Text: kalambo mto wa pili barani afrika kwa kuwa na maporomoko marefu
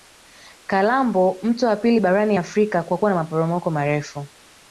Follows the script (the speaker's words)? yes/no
yes